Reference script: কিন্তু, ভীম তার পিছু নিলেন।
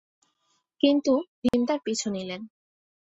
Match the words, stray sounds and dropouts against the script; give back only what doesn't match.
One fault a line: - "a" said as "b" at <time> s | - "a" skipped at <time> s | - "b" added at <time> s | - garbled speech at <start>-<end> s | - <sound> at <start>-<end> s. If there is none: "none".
- dropout at 1.5-1.5 s